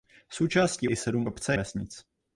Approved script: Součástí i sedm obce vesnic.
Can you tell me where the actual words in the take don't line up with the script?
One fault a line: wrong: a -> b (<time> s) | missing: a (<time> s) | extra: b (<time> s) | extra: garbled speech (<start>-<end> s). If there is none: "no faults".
no faults